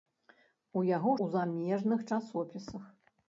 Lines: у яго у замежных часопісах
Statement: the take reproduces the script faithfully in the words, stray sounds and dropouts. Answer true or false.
true